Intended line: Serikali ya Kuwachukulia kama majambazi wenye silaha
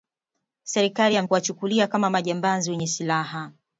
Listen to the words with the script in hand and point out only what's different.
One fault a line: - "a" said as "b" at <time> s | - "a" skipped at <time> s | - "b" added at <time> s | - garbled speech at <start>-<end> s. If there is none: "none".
none